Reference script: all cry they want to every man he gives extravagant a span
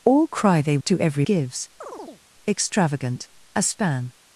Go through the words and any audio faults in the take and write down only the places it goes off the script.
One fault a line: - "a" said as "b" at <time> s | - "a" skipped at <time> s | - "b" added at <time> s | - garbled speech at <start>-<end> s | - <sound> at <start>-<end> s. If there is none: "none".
- "want" skipped at 0.8 s
- "man he" skipped at 1.2 s
- chirp at 1.8-2.2 s